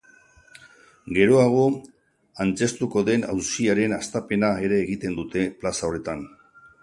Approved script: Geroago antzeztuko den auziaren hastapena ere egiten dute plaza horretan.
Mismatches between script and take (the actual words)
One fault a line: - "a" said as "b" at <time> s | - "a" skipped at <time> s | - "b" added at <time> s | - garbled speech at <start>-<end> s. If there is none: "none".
none